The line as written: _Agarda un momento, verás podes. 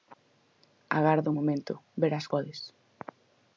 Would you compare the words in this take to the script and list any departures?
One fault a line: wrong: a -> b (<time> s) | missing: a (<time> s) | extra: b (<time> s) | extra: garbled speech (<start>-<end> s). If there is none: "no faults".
no faults